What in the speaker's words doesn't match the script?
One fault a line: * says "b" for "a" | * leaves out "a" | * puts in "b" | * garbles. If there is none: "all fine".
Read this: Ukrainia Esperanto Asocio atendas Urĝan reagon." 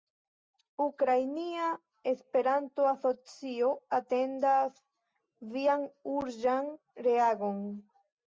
* puts in "Vian"